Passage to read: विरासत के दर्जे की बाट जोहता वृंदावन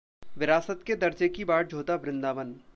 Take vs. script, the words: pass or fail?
pass